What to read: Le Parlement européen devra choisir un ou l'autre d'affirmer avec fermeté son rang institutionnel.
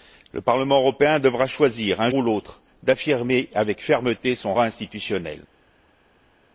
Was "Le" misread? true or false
false